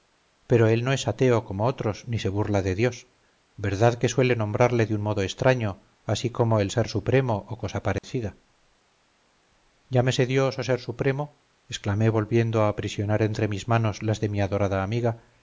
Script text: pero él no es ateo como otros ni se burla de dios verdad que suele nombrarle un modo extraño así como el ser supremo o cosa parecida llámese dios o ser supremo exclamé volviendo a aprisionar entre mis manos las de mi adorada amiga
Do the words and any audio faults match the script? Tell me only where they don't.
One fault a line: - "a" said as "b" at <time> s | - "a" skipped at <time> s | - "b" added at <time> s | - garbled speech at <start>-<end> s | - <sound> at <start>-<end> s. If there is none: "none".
- "de" added at 4.8 s
- dropout at 8.0-8.0 s